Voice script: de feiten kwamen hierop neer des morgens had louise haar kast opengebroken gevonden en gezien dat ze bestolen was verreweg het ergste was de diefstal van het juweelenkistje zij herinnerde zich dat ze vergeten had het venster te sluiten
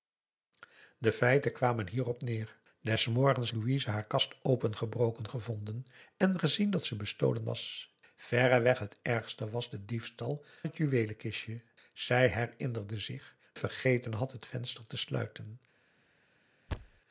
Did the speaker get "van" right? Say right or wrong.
wrong